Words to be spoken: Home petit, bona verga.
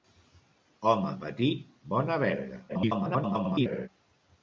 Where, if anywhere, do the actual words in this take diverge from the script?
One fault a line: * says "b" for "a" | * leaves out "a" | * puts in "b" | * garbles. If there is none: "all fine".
* garbles